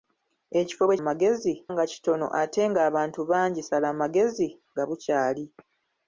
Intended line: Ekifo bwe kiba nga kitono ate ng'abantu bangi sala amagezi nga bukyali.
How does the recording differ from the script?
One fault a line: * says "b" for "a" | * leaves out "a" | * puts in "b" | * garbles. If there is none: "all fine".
* says "amagezi" for "kiba"